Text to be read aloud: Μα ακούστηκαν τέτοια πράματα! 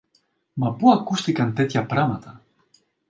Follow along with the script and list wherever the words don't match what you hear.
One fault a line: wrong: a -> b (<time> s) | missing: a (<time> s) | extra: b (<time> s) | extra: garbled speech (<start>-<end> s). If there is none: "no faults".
extra: πού (0.7 s)